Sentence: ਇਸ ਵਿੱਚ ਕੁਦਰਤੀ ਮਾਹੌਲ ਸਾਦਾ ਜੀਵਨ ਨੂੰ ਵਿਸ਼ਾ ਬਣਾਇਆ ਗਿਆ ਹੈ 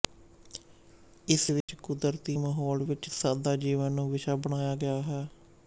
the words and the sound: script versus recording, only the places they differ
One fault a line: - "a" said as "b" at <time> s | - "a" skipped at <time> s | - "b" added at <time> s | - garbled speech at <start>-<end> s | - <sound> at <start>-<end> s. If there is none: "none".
- dropout at 1.6-1.7 s
- "ਵਿੱਚ" added at 2.8 s